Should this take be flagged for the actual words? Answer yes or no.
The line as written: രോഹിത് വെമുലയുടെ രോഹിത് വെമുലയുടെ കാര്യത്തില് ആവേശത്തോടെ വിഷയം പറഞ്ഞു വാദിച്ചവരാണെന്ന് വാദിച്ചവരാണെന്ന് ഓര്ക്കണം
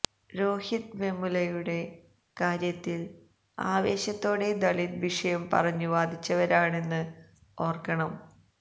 yes